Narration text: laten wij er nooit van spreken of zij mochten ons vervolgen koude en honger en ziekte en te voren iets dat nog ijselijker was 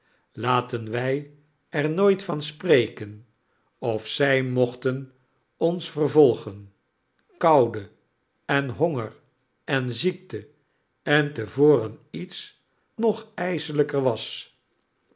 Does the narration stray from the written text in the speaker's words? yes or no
yes